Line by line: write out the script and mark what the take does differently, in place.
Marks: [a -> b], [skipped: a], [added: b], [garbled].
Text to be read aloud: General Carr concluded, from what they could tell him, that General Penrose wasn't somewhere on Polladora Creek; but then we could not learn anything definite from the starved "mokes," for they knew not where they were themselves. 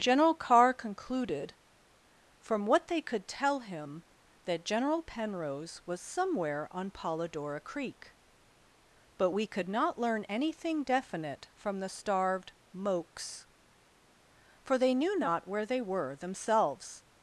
General Carr concluded, from what they could tell him, that General Penrose [wasn't -> was] somewhere on Polladora Creek; but [skipped: then] we could not learn anything definite from the starved "mokes," for they knew not where they were themselves.